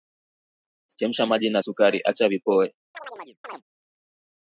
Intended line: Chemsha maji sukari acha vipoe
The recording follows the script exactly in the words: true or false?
false